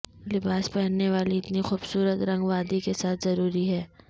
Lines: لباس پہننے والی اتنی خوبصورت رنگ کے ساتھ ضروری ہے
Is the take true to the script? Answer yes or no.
no